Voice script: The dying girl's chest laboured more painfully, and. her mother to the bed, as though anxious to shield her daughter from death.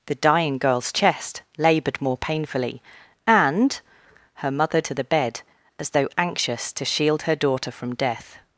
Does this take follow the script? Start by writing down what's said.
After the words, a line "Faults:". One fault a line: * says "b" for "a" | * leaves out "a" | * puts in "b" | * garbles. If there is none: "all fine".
The dying girl's chest laboured more painfully, and. her mother to the bed, as though anxious to shield her daughter from death.
Faults:
all fine